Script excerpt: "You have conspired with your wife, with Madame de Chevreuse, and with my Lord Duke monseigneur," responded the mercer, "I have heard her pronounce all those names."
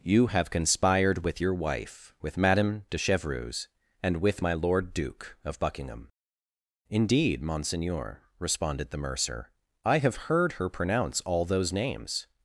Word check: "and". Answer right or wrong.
right